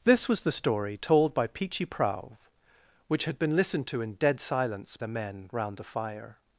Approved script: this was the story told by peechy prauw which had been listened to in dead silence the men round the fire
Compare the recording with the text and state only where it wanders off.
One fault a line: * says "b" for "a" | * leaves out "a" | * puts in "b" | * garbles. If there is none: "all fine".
all fine